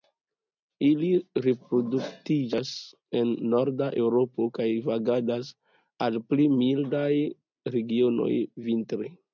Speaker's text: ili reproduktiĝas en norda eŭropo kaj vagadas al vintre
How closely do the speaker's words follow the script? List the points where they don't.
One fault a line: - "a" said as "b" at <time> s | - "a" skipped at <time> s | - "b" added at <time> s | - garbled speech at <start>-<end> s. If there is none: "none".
- "pli mildaj regionoj" added at 6.3 s